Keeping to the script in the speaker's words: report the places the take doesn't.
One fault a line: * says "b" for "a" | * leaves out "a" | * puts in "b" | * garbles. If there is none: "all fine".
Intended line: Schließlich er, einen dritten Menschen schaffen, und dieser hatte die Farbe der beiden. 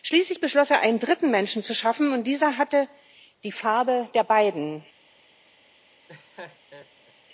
* puts in "beschloss"
* puts in "zu"